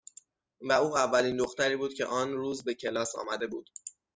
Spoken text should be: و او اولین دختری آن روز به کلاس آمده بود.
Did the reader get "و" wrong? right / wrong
right